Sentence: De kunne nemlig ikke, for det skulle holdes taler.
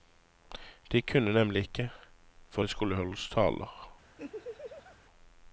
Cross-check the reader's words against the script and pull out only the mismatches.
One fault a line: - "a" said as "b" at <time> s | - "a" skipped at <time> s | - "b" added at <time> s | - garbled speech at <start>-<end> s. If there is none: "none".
none